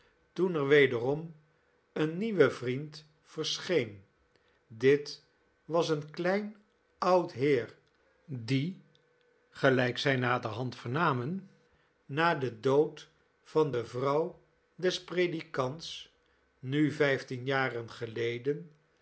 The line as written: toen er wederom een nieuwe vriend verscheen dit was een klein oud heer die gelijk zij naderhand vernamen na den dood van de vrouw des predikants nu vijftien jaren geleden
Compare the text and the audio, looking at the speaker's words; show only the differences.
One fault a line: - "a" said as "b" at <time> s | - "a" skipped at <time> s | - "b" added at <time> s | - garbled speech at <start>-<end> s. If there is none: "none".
none